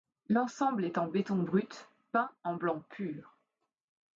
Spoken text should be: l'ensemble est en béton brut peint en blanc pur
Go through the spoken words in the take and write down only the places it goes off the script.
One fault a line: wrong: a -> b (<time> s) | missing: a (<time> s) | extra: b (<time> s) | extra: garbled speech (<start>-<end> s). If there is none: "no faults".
no faults